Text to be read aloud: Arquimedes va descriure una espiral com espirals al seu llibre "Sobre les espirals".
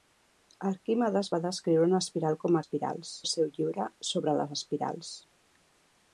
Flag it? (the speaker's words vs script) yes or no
no